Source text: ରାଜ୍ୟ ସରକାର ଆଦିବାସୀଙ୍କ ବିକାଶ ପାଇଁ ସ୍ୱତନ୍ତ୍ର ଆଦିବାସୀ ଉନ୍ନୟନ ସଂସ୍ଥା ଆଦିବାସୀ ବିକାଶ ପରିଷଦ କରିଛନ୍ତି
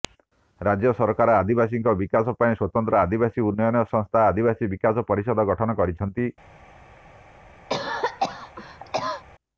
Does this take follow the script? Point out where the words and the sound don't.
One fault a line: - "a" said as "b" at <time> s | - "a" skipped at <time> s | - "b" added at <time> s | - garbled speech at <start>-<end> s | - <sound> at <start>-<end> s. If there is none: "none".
- "ଗଠନ" added at 5.5 s
- cough at 7.7-9.2 s